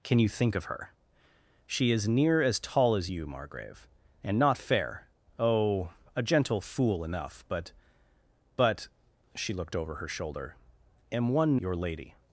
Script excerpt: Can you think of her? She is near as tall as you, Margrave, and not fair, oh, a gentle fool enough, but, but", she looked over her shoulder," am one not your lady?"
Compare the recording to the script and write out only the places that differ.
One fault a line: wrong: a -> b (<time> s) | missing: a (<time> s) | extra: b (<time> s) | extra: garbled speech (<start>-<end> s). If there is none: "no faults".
missing: not (11.6 s)